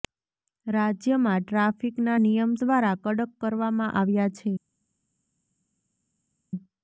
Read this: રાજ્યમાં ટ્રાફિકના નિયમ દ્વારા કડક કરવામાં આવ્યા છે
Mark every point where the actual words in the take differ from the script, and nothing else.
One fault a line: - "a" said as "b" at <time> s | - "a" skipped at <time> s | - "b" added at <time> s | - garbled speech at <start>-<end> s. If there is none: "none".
none